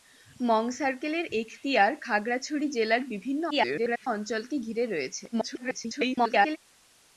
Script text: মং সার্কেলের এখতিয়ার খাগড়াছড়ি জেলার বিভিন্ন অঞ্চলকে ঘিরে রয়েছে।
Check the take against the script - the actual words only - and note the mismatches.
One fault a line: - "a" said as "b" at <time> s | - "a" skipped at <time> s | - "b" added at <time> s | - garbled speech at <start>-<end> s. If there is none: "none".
- garbled speech at 3.5-4.1 s
- garbled speech at 5.3-6.6 s